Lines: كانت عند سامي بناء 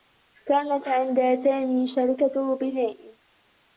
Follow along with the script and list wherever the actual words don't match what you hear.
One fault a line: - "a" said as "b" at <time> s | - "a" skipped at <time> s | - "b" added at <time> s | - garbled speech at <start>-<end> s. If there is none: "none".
- "شركة" added at 1.9 s